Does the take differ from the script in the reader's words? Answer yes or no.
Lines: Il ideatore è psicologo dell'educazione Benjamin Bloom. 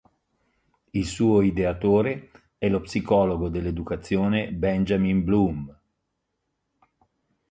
yes